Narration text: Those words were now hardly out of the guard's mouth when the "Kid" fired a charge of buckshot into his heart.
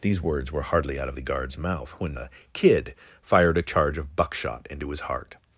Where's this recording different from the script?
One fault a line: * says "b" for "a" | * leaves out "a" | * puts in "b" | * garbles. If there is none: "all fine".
* says "These" for "Those"
* leaves out "now"